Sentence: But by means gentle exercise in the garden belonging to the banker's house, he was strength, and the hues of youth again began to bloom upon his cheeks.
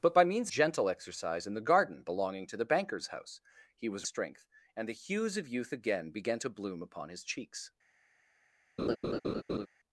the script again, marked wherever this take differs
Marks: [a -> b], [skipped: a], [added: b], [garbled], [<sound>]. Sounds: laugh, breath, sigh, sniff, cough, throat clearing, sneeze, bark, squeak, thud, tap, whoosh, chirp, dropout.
But by means gentle exercise in the garden belonging to the banker's house, he was strength, and the hues of youth again began to bloom upon his cheeks. [laugh]